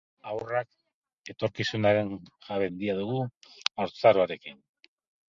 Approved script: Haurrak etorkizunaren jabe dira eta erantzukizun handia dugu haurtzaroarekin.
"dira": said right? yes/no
no